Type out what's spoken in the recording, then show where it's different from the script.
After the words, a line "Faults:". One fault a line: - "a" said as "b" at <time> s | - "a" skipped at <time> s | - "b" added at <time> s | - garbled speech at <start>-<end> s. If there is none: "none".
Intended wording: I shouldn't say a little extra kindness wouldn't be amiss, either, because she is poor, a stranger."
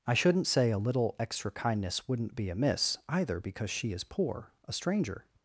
I shouldn't say a little extra kindness wouldn't be amiss, either, because she is poor, a stranger."
Faults:
none